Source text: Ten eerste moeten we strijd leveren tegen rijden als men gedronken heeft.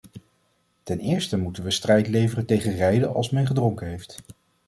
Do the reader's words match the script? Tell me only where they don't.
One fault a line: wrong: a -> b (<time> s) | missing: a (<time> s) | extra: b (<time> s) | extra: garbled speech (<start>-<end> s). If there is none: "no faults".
no faults